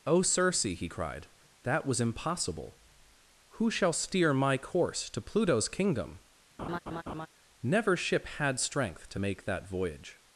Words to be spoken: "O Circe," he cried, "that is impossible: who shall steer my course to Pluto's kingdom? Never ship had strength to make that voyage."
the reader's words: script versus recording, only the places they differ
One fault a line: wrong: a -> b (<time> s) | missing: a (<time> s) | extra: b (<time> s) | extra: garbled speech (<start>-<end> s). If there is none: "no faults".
wrong: is -> was (1.9 s)